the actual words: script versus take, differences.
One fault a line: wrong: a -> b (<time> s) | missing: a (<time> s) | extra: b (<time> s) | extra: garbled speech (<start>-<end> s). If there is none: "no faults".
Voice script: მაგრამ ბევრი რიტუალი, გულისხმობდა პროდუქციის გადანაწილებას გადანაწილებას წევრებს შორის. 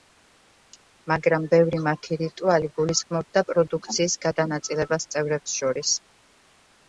extra: მათი (1.9 s)
missing: გადანაწილებას (5.1 s)